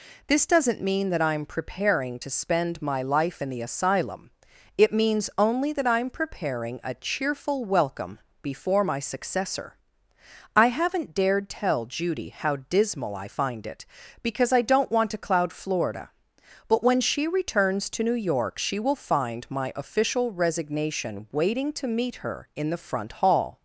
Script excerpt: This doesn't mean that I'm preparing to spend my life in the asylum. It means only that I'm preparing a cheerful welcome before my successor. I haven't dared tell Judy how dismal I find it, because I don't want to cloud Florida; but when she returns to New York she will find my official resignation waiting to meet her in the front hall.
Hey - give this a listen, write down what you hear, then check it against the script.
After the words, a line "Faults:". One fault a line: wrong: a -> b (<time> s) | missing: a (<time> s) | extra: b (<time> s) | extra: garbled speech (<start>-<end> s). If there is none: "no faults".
This doesn't mean that I'm preparing to spend my life in the asylum. It means only that I'm preparing a cheerful welcome before my successor. I haven't dared tell Judy how dismal I find it, because I don't want to cloud Florida; but when she returns to New York she will find my official resignation waiting to meet her in the front hall.
Faults:
no faults